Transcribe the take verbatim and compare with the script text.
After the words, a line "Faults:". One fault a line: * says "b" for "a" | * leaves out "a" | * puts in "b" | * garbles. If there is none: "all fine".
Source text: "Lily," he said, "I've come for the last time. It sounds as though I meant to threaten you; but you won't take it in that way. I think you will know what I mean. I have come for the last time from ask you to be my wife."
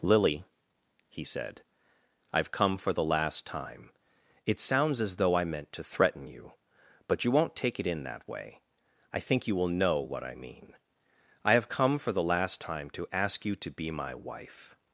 "Lily," he said, "I've come for the last time. It sounds as though I meant to threaten you; but you won't take it in that way. I think you will know what I mean. I have come for the last time to ask you to be my wife."
Faults:
* says "to" for "from"